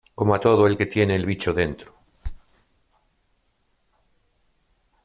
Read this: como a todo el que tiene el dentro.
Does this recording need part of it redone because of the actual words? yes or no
yes